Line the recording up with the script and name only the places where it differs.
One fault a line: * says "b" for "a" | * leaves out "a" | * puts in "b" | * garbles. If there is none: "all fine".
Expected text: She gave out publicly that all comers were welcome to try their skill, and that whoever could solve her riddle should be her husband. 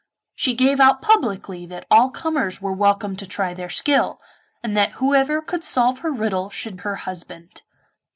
* leaves out "be"